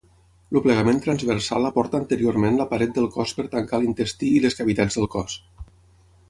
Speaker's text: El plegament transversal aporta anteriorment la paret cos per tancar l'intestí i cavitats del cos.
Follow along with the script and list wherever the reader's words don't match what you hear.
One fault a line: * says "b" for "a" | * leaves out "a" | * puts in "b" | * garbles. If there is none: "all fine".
* puts in "del"
* puts in "les"